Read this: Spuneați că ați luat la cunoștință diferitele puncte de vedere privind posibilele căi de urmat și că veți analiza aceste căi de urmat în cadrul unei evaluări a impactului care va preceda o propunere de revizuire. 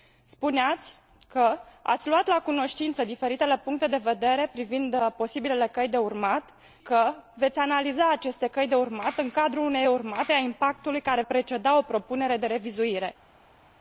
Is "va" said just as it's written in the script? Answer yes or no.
no